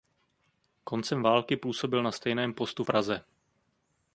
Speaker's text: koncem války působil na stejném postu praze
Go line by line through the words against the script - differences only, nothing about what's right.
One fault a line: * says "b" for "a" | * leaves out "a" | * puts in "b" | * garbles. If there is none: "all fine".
all fine